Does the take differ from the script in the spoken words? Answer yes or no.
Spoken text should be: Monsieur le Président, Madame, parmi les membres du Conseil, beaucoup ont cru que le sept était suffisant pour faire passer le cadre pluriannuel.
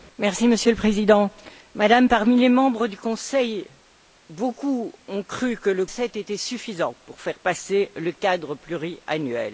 no